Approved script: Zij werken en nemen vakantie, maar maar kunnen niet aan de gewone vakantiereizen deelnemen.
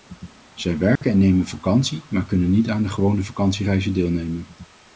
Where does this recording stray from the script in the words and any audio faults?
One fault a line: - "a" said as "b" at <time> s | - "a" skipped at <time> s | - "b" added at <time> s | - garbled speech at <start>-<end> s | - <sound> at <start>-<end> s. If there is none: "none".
- dropout at 1.0-1.0 s
- "maar" skipped at 2.2 s